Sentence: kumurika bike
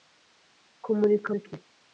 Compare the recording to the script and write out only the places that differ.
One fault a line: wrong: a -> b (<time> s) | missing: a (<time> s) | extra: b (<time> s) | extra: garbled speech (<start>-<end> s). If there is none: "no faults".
no faults